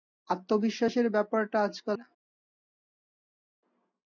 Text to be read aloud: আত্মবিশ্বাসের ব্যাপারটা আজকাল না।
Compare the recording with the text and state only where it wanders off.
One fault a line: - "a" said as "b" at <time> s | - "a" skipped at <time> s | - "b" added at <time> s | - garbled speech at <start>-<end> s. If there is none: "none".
none